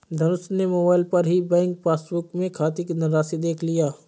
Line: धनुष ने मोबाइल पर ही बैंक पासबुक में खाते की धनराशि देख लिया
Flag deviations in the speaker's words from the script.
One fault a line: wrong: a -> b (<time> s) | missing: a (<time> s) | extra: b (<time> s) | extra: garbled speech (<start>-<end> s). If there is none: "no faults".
no faults